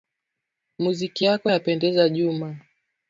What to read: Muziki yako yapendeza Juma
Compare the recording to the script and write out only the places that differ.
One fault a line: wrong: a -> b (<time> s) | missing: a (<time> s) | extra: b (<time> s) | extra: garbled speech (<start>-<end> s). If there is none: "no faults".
no faults